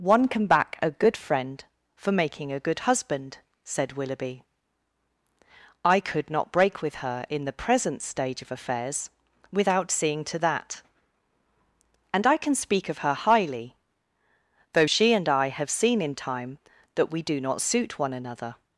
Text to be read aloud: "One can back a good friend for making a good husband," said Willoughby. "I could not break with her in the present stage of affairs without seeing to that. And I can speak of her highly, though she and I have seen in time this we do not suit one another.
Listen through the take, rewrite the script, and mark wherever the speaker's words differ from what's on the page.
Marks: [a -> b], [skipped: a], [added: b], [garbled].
"One can back a good friend for making a good husband," said Willoughby. "I could not break with her in the present stage of affairs without seeing to that. And I can speak of her highly, though she and I have seen in time [this -> that] we do not suit one another.